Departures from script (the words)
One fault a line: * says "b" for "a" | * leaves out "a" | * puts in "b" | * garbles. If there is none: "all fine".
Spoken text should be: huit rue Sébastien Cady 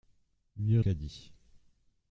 * leaves out "rue Sébastien"